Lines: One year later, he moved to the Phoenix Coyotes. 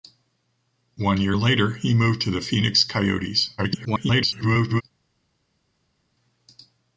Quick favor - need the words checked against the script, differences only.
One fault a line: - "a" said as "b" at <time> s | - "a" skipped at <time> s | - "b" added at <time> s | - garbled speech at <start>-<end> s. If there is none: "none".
- garbled speech at 3.6-4.8 s